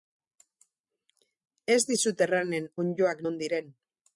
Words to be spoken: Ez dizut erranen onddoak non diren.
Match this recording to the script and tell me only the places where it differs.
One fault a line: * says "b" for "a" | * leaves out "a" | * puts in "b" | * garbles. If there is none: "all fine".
all fine